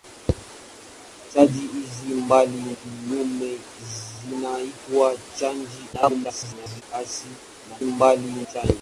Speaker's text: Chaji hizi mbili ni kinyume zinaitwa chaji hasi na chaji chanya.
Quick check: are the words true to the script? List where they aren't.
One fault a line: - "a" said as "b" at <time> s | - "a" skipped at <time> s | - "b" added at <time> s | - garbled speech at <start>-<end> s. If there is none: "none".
- "ni" skipped at 2.8 s
- garbled speech at 5.9-6.8 s
- "chaji" said as "mbili" at 7.8 s